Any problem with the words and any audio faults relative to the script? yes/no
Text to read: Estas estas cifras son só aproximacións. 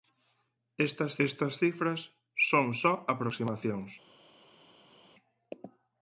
no